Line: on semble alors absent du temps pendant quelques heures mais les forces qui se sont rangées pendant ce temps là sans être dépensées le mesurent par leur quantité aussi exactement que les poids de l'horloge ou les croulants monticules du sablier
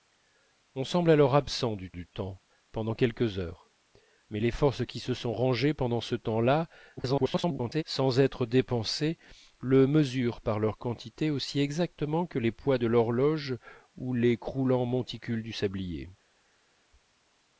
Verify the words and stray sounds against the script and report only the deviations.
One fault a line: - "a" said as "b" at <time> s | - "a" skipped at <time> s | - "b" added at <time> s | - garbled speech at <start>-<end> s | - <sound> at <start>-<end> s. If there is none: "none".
- "du" added at 1.9 s
- garbled speech at 7.0-7.8 s